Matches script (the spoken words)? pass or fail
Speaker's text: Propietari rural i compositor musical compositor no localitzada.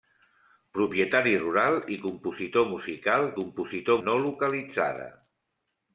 pass